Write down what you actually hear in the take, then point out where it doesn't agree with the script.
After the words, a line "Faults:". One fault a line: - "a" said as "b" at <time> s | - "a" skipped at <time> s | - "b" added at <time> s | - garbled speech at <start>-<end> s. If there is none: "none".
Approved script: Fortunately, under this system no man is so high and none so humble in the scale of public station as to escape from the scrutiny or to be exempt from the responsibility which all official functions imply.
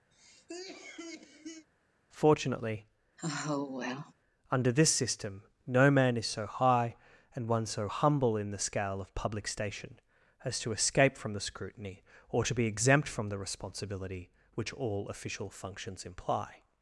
Fortunately, under this system no man is so high and one so humble in the scale of public station as to escape from the scrutiny or to be exempt from the responsibility which all official functions imply.
Faults:
- "none" said as "one" at 7.5 s